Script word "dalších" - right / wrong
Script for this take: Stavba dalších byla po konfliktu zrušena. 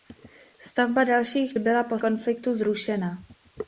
right